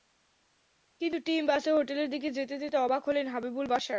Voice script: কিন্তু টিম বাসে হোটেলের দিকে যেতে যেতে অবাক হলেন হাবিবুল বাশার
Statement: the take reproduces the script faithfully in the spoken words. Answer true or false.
true